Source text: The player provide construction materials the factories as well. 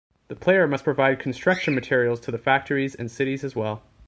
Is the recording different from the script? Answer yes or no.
yes